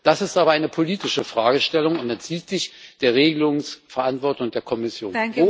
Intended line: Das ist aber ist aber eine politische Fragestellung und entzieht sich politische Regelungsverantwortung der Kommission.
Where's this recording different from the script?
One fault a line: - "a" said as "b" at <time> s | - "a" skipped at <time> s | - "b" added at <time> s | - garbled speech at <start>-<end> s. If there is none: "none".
- "ist aber" skipped at 0.5 s
- "politische" said as "der" at 3.0 s